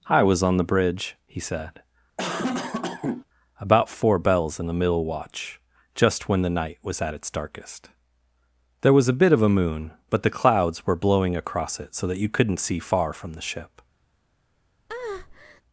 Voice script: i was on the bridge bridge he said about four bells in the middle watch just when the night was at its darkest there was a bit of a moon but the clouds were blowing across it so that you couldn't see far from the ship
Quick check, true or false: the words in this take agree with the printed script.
false